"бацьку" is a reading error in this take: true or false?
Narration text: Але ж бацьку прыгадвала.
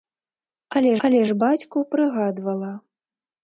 false